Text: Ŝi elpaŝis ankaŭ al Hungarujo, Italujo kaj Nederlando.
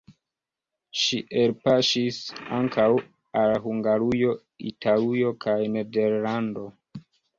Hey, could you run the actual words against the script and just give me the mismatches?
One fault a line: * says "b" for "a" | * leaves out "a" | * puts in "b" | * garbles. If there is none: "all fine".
all fine